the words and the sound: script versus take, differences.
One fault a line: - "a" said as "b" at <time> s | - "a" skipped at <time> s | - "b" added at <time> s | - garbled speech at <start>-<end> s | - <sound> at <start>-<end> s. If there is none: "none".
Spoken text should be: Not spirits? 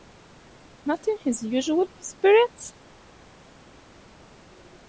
- "in his usual" added at 1.1 s